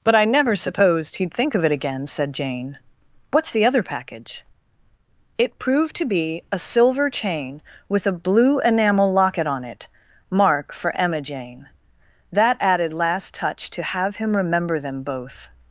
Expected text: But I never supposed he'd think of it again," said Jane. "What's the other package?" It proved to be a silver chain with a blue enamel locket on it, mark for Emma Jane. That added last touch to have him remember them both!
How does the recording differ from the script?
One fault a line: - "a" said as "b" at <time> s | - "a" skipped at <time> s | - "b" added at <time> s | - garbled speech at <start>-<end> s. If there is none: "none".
none